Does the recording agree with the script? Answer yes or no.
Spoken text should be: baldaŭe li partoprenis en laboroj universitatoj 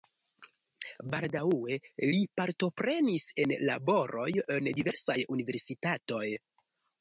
no